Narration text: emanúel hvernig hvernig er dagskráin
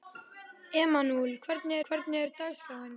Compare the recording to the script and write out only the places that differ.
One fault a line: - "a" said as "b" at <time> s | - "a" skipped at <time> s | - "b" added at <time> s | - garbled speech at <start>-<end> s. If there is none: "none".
none